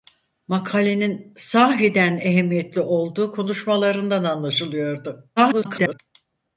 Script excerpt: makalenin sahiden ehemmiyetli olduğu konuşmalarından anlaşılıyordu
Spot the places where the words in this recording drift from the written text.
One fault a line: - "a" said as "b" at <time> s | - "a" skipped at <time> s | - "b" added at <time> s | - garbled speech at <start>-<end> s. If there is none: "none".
- garbled speech at 5.4-6.0 s